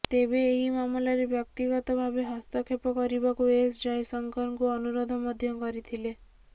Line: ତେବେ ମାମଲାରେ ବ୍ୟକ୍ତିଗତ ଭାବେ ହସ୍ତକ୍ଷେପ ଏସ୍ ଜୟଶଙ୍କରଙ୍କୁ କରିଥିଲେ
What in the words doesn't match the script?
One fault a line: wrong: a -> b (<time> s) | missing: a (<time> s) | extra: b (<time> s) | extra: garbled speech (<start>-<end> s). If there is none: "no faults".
extra: ଏହି (0.4 s)
extra: କରିବାକୁ (3.0 s)
extra: ଅନୁରୋଧ ମଧ୍ୟ (4.8 s)